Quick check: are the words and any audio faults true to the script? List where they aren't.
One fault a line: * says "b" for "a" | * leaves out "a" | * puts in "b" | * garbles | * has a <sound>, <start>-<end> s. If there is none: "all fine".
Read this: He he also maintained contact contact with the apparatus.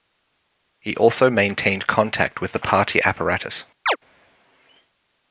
* leaves out "he"
* leaves out "contact"
* puts in "party"
* has a chirp, 3.9-4.0 s